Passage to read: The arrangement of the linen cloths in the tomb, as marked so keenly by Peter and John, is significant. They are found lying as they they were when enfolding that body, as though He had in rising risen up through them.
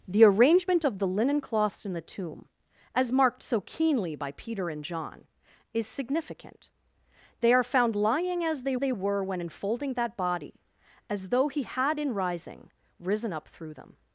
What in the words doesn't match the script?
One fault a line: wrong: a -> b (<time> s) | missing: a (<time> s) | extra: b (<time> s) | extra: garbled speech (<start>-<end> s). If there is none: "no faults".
no faults